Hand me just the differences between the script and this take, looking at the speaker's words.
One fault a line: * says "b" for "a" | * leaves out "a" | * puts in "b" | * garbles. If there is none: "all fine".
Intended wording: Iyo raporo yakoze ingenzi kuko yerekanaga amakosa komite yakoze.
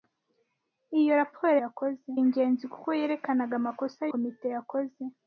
all fine